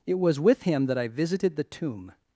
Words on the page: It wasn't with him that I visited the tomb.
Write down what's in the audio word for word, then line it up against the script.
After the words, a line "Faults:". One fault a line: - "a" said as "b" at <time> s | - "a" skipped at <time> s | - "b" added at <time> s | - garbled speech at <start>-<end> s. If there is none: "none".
It was with him that I visited the tomb.
Faults:
- "wasn't" said as "was" at 0.2 s